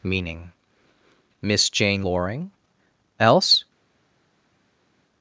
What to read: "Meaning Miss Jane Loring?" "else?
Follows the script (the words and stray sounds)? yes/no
yes